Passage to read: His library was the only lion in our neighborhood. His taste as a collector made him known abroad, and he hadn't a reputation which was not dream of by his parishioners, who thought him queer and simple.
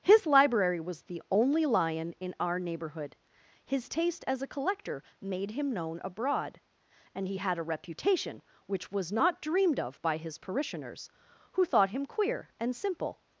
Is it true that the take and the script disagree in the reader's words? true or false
true